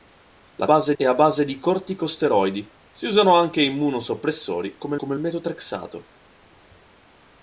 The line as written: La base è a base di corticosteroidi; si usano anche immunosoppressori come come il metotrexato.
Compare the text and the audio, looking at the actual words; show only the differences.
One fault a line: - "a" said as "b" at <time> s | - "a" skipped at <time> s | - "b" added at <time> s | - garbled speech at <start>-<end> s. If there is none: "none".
none